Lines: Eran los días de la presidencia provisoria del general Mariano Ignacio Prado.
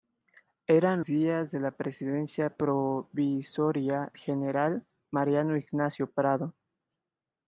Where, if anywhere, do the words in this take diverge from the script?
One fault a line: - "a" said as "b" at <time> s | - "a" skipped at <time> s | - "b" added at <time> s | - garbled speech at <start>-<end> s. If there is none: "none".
- "los" skipped at 1.0 s
- "del" skipped at 4.1 s